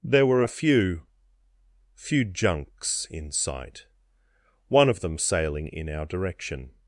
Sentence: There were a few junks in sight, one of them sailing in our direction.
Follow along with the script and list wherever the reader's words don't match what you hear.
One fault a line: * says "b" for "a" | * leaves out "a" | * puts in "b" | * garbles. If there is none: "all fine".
* puts in "few"